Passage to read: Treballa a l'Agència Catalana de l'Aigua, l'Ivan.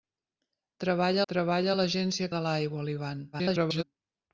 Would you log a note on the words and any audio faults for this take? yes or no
yes